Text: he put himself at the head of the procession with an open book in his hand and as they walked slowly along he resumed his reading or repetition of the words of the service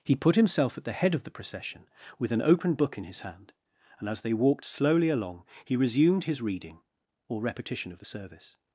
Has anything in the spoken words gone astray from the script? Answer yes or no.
yes